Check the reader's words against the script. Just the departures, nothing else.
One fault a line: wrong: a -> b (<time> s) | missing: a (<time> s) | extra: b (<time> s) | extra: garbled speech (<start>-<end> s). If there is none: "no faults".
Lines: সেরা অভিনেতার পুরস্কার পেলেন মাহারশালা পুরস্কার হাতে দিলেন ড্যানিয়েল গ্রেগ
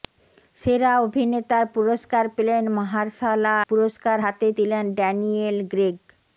no faults